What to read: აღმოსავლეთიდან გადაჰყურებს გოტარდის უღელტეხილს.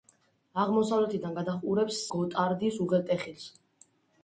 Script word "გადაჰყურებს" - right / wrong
right